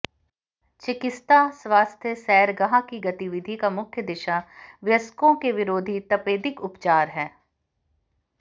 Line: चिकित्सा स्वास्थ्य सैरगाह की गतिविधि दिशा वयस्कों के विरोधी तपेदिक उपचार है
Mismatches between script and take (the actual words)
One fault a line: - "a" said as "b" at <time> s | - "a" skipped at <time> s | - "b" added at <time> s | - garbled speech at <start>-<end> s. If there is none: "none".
- "का मुख्य" added at 3.6 s